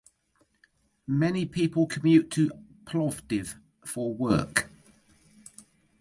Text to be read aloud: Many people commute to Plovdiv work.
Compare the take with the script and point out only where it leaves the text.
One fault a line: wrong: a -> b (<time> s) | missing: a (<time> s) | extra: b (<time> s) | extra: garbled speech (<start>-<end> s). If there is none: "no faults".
extra: for (3.8 s)